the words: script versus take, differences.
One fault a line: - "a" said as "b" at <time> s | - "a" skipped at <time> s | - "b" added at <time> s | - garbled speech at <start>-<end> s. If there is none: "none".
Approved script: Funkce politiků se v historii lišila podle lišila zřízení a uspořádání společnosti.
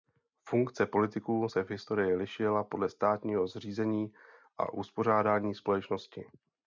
- "lišila" said as "státního" at 2.9 s